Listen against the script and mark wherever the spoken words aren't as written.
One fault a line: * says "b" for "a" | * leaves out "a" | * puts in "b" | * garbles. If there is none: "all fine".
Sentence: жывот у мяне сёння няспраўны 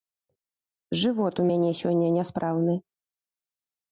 all fine